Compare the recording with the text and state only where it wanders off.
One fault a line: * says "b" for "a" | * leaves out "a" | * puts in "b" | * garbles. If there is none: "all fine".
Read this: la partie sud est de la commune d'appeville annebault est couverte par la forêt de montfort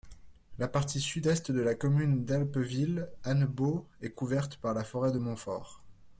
all fine